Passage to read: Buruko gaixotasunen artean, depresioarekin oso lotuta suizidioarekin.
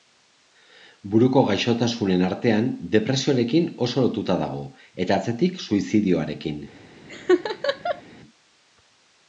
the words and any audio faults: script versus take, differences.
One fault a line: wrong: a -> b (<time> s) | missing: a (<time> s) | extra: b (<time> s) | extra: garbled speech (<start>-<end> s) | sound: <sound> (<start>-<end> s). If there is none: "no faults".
extra: dago eta atzetik (4.4 s)
sound: laugh (7.1-8.0 s)